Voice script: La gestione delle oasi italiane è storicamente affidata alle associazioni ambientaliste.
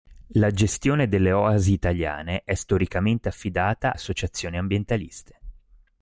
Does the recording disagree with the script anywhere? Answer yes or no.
yes